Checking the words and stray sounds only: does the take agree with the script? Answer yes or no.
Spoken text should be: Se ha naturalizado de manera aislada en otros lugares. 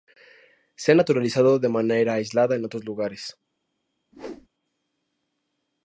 no